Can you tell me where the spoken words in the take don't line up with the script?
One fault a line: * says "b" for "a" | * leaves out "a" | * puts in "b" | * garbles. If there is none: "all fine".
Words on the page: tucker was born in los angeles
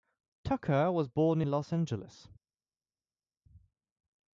all fine